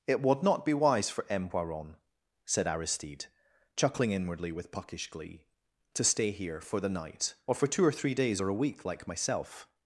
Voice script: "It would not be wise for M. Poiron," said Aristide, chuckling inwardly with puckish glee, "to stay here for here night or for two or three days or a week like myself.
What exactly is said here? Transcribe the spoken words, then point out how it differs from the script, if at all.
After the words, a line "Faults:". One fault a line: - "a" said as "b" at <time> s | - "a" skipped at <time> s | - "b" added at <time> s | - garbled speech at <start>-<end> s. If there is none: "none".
"It would not be wise for M. Poiron," said Aristide, chuckling inwardly with puckish glee, "to stay here for the night or for two or three days or a week like myself.
Faults:
- "here" said as "the" at 6.8 s